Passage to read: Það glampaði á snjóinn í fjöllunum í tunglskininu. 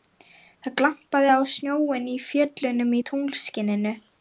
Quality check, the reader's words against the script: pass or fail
pass